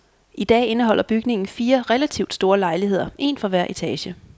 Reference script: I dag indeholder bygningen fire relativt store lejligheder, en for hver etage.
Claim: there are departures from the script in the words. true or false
false